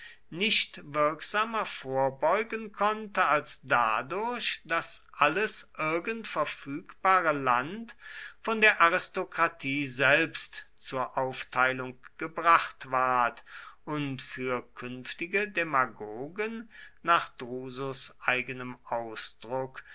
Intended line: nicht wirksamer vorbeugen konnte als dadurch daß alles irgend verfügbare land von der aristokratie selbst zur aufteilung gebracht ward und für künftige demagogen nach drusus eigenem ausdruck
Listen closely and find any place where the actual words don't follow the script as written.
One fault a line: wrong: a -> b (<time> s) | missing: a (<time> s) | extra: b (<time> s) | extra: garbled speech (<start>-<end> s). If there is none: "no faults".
no faults